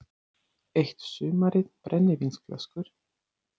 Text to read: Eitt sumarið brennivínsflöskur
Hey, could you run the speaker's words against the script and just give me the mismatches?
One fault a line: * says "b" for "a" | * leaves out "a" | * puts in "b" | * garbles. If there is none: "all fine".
all fine